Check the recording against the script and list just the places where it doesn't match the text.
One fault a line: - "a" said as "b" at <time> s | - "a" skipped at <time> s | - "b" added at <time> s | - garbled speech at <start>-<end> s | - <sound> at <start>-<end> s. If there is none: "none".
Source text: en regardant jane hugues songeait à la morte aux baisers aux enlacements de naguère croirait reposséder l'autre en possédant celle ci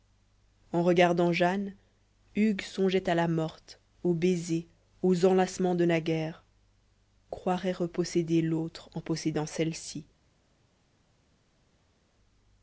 none